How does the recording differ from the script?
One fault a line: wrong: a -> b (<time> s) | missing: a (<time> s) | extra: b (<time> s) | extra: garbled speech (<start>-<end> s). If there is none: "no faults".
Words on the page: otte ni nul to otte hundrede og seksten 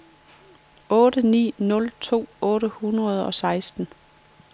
no faults